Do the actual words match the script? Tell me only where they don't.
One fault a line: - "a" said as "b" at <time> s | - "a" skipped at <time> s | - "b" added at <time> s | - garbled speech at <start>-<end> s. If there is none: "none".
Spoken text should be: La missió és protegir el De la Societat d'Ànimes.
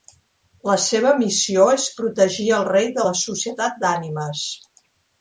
- "seva" added at 0.8 s
- "Rei" added at 2.7 s